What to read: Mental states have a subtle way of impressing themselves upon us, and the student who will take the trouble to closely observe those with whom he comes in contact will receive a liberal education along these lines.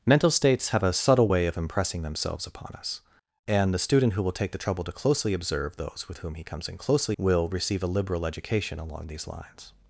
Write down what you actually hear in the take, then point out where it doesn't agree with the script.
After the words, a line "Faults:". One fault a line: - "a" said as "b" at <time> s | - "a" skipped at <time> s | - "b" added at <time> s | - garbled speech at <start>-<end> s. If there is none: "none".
Mental states have a subtle way of impressing themselves upon us, and the student who will take the trouble to closely observe those with whom he comes in closely will receive a liberal education along these lines.
Faults:
- "contact" said as "closely" at 6.8 s